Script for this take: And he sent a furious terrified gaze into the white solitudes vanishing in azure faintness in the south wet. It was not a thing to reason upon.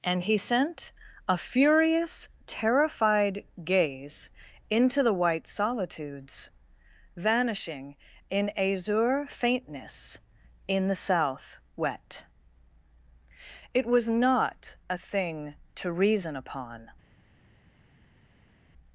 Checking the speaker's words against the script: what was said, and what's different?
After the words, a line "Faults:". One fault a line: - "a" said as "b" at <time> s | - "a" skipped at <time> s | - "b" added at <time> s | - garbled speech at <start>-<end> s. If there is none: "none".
And he sent a furious terrified gaze into the white solitudes vanishing in azure faintness in the south wet. It was not a thing to reason upon.
Faults:
none